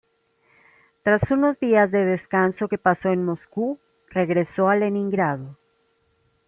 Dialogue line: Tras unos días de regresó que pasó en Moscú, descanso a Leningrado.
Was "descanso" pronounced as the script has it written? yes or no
no